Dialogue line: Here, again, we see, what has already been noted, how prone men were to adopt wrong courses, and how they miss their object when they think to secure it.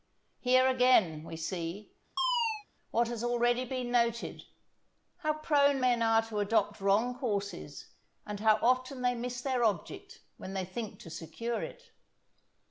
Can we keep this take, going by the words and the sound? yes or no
no